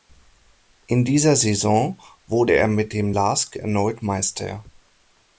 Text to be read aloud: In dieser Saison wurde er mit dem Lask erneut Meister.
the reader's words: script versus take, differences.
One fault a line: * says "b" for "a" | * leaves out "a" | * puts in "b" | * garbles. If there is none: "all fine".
all fine